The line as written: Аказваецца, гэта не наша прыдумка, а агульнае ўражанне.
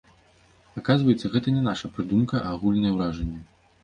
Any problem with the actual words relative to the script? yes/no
no